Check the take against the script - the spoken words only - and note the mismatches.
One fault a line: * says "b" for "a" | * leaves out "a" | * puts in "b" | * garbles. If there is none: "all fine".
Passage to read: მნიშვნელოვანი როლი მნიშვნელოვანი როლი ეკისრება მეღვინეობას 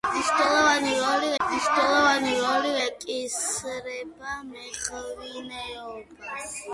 all fine